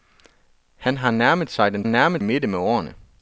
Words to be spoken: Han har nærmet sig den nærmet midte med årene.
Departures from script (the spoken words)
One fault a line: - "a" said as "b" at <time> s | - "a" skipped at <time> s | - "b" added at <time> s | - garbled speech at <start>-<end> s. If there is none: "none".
none